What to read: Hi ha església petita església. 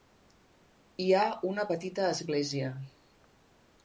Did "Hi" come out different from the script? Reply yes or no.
no